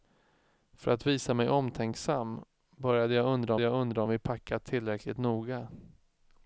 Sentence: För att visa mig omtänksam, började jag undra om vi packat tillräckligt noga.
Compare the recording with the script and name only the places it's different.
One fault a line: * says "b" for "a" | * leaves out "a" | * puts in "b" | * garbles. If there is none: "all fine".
* puts in "jag undra"